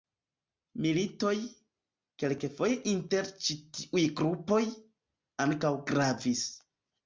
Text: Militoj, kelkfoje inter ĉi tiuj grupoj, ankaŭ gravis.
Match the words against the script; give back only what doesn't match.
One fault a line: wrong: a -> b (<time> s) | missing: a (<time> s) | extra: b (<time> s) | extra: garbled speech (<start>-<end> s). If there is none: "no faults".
no faults